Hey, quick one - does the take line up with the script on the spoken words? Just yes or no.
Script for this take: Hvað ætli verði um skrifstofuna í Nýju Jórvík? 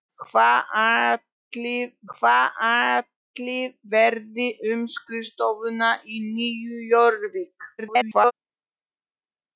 no